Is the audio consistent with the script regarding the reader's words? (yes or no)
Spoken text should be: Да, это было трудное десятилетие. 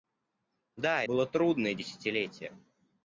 no